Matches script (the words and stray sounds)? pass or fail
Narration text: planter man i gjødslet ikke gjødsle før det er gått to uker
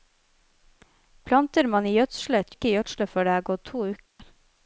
fail